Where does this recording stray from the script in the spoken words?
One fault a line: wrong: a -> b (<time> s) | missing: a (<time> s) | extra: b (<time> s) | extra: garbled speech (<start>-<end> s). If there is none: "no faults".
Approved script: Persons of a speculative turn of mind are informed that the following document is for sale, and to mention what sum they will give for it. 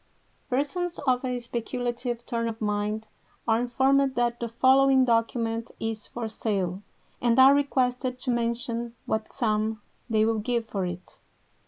extra: are requested (7.4 s)